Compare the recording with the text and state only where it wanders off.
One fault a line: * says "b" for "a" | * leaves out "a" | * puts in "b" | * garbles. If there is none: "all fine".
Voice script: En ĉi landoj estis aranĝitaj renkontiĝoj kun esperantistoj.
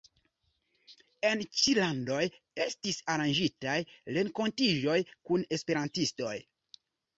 all fine